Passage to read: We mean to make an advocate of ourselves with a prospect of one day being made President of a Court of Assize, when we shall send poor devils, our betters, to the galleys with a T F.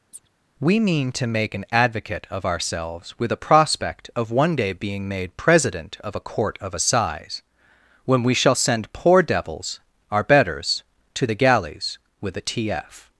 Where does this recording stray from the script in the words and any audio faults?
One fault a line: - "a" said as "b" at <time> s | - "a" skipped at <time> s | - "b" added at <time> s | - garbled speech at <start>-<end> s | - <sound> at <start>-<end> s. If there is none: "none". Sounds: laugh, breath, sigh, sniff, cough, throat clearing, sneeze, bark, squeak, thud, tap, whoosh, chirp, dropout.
- chirp at 0.1-0.3 s